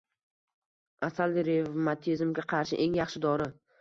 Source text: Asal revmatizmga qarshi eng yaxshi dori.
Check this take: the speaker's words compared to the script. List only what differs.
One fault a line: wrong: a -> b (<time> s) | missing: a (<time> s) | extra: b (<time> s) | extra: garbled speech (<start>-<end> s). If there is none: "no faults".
no faults